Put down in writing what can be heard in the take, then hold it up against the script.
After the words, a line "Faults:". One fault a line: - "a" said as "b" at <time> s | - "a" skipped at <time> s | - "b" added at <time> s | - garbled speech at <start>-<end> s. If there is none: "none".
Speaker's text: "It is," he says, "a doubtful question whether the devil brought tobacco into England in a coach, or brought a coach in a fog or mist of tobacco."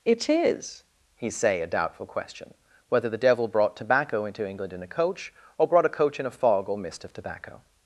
"It is," he say, "a doubtful question whether the devil brought tobacco into England in a coach, or brought a coach in a fog or mist of tobacco."
Faults:
- "says" said as "say" at 1.3 s